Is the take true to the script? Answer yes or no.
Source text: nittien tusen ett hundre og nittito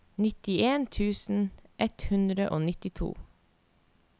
yes